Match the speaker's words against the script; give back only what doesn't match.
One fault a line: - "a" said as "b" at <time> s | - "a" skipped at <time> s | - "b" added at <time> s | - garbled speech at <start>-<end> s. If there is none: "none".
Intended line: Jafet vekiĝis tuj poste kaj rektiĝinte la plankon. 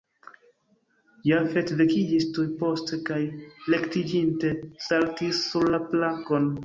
- "saltis sur" added at 4.9 s